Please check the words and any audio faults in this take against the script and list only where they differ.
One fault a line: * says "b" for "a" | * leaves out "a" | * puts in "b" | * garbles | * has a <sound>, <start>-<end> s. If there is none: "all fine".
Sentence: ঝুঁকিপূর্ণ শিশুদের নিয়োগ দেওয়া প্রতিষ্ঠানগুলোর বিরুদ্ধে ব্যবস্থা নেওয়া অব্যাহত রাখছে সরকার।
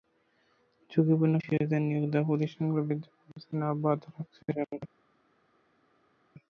all fine